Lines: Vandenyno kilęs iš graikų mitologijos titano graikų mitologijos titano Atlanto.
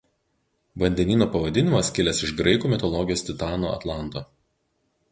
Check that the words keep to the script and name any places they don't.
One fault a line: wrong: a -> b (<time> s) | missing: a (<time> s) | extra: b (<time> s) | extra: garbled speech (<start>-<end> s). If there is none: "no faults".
extra: pavadinimas (1.4 s)
missing: graikų mitologijos titano (3.8 s)